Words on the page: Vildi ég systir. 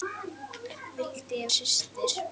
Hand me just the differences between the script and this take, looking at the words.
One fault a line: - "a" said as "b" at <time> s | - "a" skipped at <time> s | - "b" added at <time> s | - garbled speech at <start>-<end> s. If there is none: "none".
none